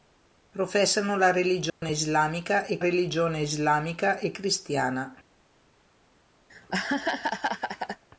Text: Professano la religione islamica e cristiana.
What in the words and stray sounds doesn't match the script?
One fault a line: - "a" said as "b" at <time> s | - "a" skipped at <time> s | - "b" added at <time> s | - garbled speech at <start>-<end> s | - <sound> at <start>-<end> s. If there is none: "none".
- dropout at 1.7-1.8 s
- "religione islamica e" added at 2.8 s
- laugh at 6.5-8.0 s